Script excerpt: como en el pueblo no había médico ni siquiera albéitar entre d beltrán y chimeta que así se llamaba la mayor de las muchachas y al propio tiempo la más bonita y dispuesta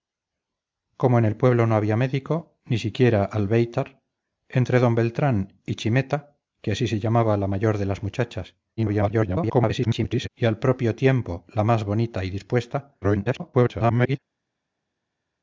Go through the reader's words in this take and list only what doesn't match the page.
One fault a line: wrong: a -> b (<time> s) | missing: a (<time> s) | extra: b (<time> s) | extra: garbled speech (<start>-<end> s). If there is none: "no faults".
extra: garbled speech (8.8-10.3 s)
extra: garbled speech (13.0-14.2 s)